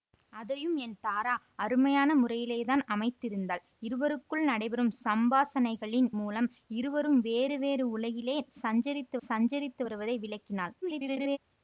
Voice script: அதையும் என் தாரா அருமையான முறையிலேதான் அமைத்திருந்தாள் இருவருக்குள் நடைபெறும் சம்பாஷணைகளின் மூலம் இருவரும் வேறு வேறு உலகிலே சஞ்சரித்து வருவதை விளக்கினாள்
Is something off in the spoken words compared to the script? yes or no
yes